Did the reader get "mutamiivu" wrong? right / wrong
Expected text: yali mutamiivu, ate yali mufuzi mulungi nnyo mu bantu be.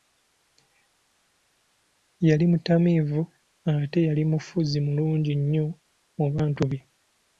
right